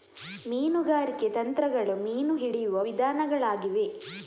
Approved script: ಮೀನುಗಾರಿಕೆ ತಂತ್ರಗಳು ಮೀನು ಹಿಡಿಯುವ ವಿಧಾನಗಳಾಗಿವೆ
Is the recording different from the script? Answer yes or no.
no